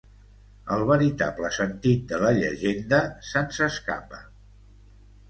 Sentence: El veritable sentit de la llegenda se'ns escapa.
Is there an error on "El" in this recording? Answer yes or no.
no